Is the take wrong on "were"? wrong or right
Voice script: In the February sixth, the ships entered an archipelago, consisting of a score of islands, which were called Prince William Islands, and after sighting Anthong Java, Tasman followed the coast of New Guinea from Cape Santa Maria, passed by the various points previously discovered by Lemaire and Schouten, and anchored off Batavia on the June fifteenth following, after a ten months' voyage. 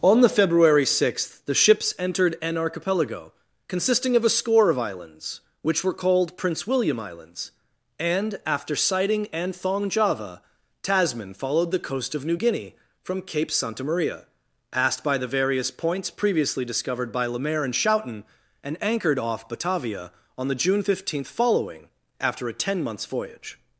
right